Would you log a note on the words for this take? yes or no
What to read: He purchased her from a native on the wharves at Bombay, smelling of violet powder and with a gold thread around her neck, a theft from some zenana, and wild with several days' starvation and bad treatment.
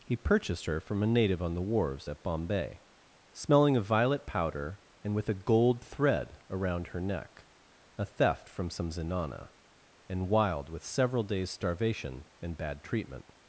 no